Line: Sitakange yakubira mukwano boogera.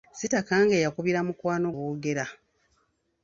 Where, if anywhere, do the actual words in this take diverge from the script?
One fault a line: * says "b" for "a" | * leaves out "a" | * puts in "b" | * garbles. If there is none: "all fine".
all fine